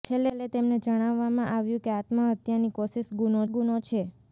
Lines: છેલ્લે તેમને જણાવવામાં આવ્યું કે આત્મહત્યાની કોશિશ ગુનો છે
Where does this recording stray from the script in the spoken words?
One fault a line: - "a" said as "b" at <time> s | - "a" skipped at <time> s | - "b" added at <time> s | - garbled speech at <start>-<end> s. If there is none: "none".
- "ગુનો" added at 3.5 s